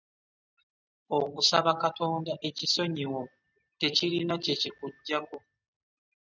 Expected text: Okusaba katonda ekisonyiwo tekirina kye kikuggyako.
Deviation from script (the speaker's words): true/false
false